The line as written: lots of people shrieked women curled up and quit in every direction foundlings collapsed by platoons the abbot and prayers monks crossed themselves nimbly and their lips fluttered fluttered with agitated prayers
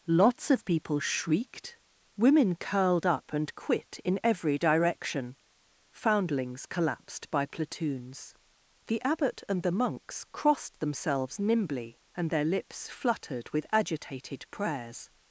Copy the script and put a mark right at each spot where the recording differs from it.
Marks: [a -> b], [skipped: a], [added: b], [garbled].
lots of people shrieked women curled up and quit in every direction foundlings collapsed by platoons the abbot and [prayers -> the] monks crossed themselves nimbly and their lips fluttered [skipped: fluttered] with agitated prayers